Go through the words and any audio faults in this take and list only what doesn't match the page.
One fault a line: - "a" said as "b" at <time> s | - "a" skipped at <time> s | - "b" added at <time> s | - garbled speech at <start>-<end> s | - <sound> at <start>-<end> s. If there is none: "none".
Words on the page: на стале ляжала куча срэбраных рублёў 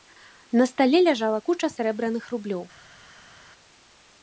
none